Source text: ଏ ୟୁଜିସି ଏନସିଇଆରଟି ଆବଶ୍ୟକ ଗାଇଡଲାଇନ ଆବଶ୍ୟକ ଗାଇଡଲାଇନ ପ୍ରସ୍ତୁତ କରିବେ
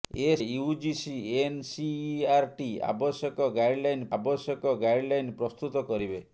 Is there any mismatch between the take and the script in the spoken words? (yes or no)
no